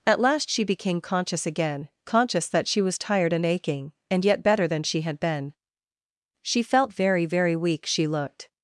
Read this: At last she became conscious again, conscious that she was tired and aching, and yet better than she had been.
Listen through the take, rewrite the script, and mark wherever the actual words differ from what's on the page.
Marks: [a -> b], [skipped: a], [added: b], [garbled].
At last she became conscious again, conscious that she was tired and aching, and yet better than she had been. [added: She felt very very weak She looked]